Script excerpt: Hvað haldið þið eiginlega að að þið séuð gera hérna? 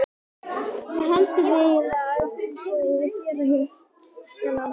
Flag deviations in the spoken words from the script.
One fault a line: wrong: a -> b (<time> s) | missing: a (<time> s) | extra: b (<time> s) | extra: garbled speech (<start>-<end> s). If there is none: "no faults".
missing: að (2.3 s)
extra: að (3.0 s)